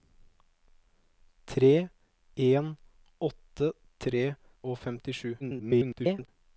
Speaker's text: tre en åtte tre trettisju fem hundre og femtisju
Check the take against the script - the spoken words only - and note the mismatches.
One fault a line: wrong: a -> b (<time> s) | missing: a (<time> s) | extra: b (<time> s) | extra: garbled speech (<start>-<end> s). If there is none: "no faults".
missing: trettisju fem hundre (4.2 s)
extra: garbled speech (5.4-6.3 s)